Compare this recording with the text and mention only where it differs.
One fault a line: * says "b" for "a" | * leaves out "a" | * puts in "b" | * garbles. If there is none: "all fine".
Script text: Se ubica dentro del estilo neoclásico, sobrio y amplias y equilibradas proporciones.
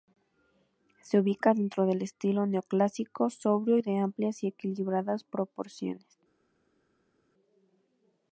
* puts in "de"